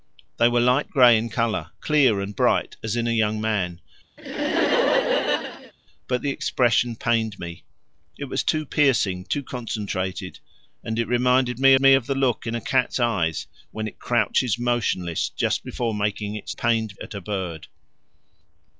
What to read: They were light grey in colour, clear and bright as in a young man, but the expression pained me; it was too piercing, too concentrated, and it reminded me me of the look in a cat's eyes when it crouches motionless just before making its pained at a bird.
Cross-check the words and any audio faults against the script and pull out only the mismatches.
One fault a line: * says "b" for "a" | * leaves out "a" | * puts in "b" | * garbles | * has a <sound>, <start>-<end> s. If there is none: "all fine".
* has a laugh, 4.2-5.7 s